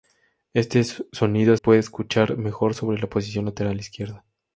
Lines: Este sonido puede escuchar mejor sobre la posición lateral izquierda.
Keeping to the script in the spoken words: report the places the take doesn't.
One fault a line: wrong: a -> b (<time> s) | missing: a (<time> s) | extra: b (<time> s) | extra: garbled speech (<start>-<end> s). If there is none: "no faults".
no faults